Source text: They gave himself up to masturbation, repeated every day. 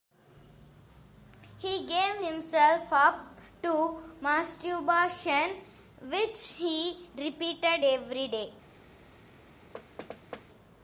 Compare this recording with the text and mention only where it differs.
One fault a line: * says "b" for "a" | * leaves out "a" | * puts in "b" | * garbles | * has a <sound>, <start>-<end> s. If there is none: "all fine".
* says "He" for "They"
* puts in "which he"
* has a thud, 9.7-10.5 s